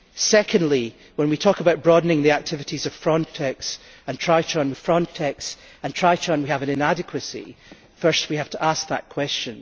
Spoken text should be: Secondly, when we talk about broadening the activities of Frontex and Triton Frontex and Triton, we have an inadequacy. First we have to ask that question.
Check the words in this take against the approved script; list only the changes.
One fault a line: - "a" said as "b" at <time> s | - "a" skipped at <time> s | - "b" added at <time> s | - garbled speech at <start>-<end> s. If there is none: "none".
none